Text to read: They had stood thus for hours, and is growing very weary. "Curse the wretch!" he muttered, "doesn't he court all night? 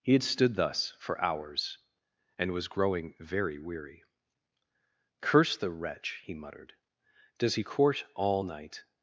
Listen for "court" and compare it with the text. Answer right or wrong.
right